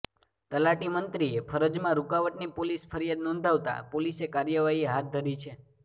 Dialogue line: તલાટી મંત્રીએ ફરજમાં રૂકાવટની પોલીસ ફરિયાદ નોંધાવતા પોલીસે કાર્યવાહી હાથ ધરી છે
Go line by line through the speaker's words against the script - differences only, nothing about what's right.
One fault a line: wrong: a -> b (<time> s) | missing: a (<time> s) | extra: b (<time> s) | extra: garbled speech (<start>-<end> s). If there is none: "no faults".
no faults